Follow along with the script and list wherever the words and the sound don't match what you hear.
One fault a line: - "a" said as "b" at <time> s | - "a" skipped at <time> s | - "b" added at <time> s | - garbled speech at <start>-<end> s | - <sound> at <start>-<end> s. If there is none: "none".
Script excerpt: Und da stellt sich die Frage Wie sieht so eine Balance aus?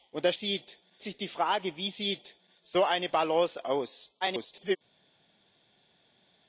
- "stellt" said as "sieht" at 0.3 s
- garbled speech at 4.2-4.8 s